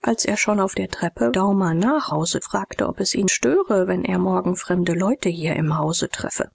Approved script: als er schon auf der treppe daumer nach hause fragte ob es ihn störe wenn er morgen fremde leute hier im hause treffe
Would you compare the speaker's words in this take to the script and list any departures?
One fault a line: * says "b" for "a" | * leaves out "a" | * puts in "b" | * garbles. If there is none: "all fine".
all fine